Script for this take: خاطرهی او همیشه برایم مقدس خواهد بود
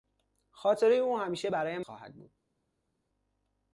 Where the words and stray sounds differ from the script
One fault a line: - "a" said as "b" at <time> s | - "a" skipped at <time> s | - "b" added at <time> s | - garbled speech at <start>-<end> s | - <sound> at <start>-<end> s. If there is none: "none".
- "مقدس" skipped at 1.8 s